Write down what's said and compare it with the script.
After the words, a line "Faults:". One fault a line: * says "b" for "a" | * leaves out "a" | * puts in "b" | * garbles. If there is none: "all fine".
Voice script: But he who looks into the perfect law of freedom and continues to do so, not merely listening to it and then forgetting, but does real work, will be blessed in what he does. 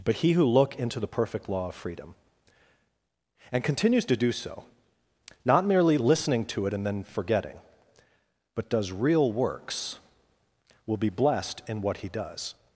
But he who look into the perfect law of freedom and continues to do so, not merely listening to it and then forgetting, but does real works, will be blessed in what he does.
Faults:
* says "look" for "looks"
* says "works" for "work"